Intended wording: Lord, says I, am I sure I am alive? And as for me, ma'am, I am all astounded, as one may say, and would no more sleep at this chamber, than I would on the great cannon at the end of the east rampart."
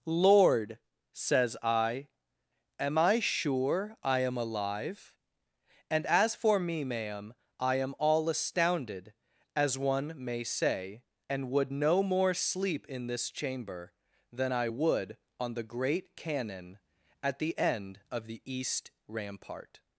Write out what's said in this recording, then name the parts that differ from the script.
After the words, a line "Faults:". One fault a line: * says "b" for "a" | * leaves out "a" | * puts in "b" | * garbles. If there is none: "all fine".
Lord, says I, am I sure I am alive? And as for me, ma'am, I am all astounded, as one may say, and would no more sleep in this chamber, than I would on the great cannon at the end of the east rampart."
Faults:
* says "in" for "at"